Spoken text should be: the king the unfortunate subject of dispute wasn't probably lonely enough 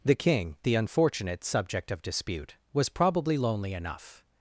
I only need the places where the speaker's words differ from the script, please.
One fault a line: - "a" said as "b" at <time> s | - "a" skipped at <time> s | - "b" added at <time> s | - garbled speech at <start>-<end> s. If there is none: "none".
- "wasn't" said as "was" at 2.7 s